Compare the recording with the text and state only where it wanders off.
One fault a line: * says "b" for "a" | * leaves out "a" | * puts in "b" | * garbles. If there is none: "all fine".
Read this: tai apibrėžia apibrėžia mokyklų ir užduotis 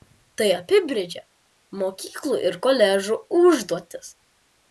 * leaves out "apibrėžia"
* puts in "koledžų"